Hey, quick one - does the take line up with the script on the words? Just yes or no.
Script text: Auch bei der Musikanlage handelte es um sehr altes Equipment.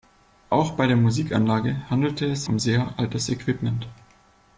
yes